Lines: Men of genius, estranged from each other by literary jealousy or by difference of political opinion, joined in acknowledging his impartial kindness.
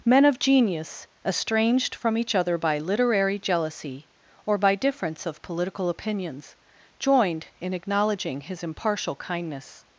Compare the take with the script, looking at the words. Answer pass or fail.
fail